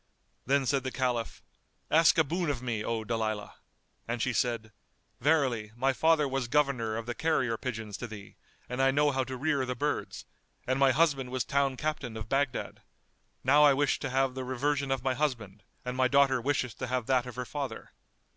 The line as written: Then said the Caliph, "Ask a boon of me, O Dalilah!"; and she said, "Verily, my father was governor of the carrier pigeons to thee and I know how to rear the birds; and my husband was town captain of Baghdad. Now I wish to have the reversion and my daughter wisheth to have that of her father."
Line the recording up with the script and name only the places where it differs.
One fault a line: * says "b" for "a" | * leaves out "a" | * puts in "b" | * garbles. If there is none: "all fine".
* puts in "of my husband"